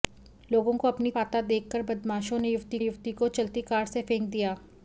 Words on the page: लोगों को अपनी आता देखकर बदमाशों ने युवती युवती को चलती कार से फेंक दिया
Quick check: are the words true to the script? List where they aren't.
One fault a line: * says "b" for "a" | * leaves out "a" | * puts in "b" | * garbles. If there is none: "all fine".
all fine